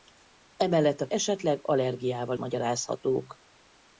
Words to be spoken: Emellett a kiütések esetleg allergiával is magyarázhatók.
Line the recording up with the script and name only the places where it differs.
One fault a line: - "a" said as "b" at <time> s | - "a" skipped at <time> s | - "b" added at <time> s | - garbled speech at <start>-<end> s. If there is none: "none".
- "kiütések" skipped at 1.1 s
- "is" skipped at 2.4 s